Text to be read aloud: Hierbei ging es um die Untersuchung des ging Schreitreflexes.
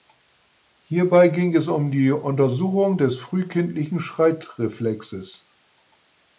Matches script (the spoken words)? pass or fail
fail